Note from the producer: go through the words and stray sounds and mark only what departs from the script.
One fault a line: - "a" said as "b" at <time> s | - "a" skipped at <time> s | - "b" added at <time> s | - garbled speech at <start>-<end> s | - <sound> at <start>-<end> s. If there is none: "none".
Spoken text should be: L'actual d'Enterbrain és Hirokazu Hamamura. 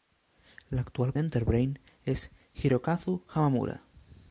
none